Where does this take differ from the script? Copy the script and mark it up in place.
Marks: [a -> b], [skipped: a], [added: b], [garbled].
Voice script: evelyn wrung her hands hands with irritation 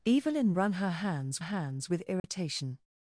evelyn wrung her hands hands with irritation